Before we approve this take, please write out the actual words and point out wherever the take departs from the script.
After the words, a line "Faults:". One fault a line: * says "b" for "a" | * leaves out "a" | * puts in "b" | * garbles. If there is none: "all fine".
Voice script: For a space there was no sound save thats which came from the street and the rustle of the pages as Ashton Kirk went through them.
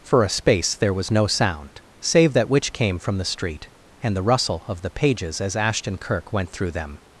For a space there was no sound save that which came from the street and the rustle of the pages as Ashton Kirk went through them.
Faults:
* says "that" for "thats"